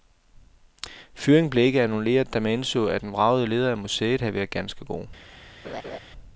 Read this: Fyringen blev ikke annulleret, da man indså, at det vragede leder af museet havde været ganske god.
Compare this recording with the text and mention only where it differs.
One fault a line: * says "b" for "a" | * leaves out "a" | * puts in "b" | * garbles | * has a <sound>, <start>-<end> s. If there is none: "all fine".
* says "den" for "det"
* has a laugh, 5.6-6.0 s